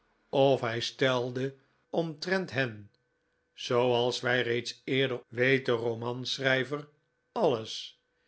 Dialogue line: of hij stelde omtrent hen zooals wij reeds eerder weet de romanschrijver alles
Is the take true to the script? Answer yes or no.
yes